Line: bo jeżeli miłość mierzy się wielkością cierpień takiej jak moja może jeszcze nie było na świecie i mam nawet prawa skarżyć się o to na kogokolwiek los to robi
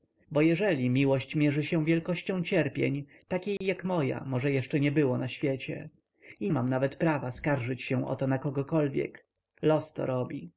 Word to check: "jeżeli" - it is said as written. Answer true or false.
true